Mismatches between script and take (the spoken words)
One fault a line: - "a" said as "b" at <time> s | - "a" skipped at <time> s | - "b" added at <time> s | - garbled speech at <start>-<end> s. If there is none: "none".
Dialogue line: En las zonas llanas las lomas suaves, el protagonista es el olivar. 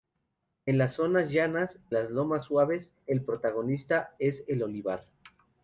none